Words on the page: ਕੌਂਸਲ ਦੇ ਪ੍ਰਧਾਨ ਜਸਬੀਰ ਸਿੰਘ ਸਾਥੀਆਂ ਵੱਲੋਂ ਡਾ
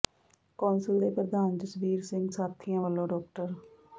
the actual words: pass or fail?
pass